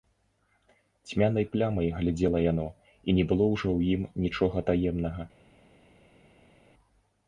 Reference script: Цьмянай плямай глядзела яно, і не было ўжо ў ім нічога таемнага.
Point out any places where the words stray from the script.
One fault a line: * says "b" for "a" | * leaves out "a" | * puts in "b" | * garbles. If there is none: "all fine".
all fine